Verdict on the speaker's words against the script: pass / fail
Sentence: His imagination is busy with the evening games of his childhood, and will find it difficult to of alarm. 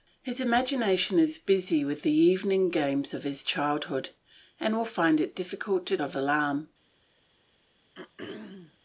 pass